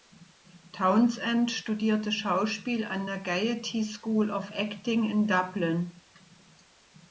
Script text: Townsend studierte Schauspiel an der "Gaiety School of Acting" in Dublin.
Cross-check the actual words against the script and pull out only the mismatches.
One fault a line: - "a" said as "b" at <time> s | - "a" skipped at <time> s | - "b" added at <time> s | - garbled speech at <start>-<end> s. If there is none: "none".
none